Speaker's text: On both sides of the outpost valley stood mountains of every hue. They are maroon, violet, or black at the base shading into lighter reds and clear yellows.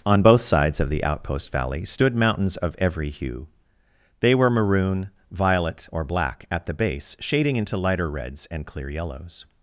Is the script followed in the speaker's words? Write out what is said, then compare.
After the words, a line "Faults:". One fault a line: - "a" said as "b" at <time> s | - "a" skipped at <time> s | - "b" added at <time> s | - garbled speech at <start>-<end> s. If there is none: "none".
On both sides of the outpost valley stood mountains of every hue. They were maroon, violet, or black at the base shading into lighter reds and clear yellows.
Faults:
- "are" said as "were" at 4.3 s